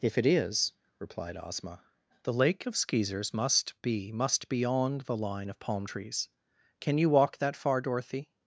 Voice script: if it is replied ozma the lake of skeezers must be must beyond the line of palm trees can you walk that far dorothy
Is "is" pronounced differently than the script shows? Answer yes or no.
no